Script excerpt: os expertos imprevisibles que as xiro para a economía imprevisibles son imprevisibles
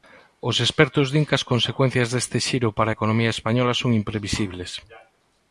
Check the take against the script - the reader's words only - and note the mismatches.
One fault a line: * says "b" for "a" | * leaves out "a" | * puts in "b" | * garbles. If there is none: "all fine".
* says "din" for "imprevisibles"
* puts in "consecuencias deste"
* says "española" for "imprevisibles"